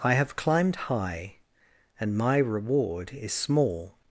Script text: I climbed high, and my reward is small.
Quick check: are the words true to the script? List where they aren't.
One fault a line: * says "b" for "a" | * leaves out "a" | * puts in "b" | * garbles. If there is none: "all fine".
* puts in "have"